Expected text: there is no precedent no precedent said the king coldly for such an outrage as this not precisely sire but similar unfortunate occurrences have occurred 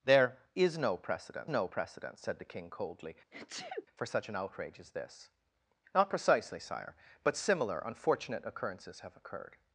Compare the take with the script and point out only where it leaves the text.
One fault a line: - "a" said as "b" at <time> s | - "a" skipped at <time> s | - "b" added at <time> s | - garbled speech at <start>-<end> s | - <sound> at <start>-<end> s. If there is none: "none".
- sneeze at 3.3-3.9 s